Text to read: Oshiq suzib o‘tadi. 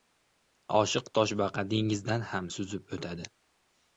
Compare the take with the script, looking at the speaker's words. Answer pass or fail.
fail